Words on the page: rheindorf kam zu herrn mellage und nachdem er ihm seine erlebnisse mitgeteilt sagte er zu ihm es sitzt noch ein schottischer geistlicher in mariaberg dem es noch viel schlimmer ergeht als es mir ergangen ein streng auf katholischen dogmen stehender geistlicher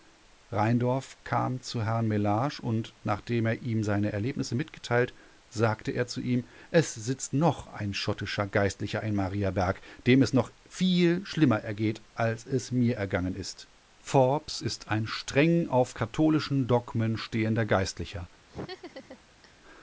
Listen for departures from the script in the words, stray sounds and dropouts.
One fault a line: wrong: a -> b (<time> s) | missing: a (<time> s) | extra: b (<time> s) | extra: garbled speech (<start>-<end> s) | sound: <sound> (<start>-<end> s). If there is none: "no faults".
extra: ist forbes ist (13.3 s)
sound: laugh (18.5-19.6 s)